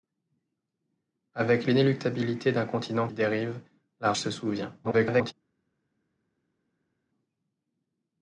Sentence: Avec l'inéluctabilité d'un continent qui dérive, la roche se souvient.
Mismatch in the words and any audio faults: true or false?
true